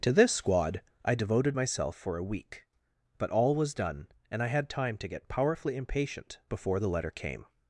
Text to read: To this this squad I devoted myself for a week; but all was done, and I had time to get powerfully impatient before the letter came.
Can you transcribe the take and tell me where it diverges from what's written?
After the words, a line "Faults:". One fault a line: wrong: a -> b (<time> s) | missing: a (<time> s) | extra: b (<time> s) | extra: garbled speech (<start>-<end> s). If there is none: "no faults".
To this squad I devoted myself for a week; but all was done, and I had time to get powerfully impatient before the letter came.
Faults:
missing: this (0.3 s)